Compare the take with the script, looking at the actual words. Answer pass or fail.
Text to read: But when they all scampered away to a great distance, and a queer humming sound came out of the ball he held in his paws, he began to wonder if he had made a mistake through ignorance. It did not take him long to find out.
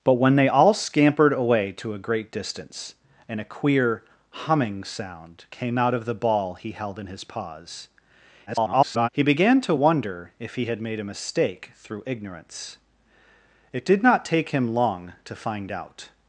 fail